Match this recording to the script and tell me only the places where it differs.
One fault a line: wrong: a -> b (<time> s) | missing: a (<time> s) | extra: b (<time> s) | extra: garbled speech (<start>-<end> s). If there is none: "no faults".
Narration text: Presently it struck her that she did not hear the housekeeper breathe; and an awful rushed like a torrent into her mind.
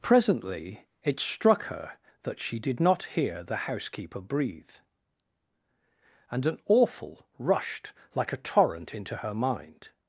no faults